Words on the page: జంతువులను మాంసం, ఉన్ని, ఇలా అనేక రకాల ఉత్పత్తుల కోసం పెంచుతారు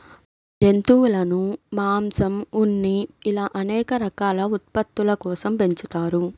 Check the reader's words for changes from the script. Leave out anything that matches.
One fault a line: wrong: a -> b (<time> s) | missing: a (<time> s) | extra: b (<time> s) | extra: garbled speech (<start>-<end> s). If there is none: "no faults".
no faults